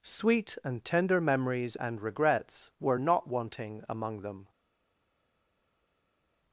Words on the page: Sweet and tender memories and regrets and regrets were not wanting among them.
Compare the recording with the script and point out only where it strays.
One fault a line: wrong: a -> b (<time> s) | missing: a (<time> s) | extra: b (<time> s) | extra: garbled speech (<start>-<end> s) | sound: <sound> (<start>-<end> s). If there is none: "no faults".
missing: and regrets (2.7 s)